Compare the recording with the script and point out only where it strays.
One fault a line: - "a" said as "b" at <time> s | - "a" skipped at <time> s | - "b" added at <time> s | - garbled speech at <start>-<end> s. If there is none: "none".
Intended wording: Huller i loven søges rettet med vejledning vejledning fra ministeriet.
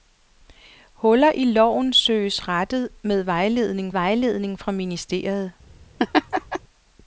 none